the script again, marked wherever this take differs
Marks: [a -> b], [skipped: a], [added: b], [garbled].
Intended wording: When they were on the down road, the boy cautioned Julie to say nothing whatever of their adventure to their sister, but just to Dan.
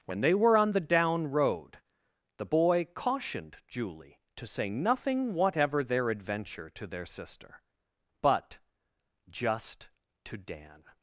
When they were on the down road, the boy cautioned Julie to say nothing whatever [skipped: of] their adventure to their sister, but just to Dan.